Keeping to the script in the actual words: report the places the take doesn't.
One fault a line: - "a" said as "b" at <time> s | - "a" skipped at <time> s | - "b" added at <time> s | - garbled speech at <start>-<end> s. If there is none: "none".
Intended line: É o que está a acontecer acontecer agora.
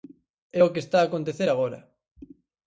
- "acontecer" skipped at 1.5 s